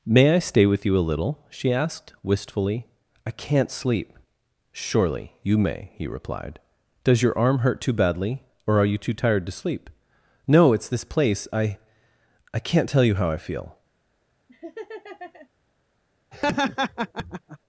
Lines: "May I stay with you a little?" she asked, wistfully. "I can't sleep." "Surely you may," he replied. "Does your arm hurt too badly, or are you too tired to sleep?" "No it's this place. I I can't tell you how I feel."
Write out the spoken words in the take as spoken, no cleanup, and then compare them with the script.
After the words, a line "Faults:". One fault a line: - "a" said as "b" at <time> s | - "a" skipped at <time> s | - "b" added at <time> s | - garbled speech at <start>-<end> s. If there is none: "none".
"May I stay with you a little?" she asked, wistfully. "I can't sleep." "Surely you may," he replied. "Does your arm hurt too badly, or are you too tired to sleep?" "No it's this place. I I can't tell you how I feel."
Faults:
none